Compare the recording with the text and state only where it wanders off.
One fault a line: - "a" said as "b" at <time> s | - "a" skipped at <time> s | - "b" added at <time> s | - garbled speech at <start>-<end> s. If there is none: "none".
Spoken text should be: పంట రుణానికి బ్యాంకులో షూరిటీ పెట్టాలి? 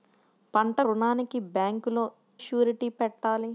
none